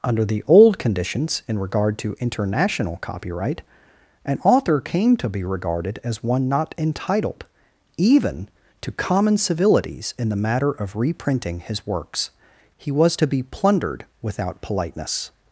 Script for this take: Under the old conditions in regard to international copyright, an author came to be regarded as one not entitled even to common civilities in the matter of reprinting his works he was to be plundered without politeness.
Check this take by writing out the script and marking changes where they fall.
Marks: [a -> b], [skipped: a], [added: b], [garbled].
Under the old conditions in regard to international copyright, an author came to be regarded as one not entitled even to common civilities in the matter of reprinting his works he was to be plundered without politeness.